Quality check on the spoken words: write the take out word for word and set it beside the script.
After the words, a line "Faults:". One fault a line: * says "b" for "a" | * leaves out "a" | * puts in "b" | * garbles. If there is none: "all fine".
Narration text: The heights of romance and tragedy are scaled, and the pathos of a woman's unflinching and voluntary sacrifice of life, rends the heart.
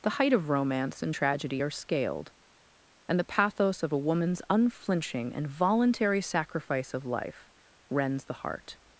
The height of romance and tragedy are scaled, and the pathos of a woman's unflinching and voluntary sacrifice of life, rends the heart.
Faults:
* says "height" for "heights"